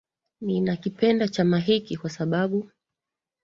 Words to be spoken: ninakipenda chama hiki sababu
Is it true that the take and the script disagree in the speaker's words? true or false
true